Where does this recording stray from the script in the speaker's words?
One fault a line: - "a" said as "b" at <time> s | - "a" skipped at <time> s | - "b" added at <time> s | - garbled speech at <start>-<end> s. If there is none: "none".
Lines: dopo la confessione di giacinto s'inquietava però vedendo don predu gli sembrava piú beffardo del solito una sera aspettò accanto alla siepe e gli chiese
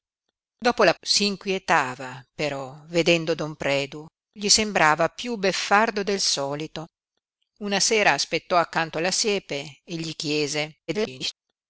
- "confessione di giacinto" skipped at 0.9 s
- garbled speech at 10.9-11.3 s